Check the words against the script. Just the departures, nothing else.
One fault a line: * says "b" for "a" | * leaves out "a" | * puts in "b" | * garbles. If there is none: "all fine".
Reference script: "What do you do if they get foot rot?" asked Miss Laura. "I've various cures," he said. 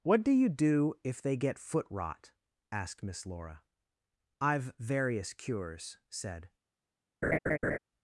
* leaves out "he"